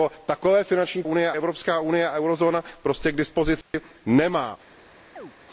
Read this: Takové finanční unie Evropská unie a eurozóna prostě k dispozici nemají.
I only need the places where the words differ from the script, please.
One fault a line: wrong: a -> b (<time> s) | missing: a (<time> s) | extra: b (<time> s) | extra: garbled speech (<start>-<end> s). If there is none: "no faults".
no faults